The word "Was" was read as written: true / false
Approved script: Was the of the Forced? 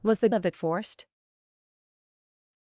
true